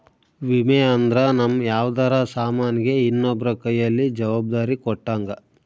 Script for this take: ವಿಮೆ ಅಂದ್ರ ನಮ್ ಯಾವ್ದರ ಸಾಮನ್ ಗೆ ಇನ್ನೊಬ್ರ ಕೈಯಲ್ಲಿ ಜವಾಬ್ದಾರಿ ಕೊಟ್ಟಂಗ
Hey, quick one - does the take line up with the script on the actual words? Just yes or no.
yes